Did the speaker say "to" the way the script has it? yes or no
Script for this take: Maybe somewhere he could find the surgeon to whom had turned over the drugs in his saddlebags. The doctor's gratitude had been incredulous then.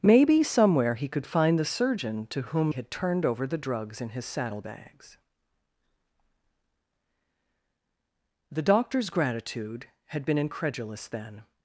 yes